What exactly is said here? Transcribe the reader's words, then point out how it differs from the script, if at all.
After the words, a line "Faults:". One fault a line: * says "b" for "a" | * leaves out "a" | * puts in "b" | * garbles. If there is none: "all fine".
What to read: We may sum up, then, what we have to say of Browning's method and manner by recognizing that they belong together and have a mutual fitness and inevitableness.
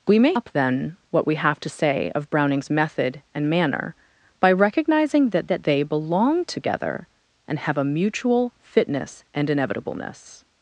We may up, then, what we have to say of Browning's method and manner by recognizing that that they belong together and have a mutual fitness and inevitableness.
Faults:
* leaves out "sum"
* puts in "that"